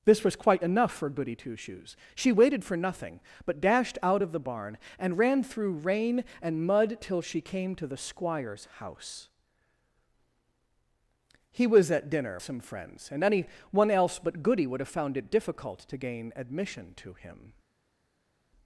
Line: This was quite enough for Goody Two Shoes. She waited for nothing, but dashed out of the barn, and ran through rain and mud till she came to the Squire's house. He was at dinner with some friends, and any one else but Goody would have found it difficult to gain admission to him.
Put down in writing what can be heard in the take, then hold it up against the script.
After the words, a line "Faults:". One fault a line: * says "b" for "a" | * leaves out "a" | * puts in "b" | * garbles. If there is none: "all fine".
This was quite enough for Goody Two Shoes. She waited for nothing, but dashed out of the barn, and ran through rain and mud till she came to the Squire's house. He was at dinner some friends, and any one else but Goody would have found it difficult to gain admission to him.
Faults:
* leaves out "with"